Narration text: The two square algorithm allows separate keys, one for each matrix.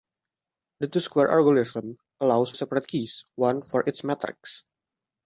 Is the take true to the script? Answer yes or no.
yes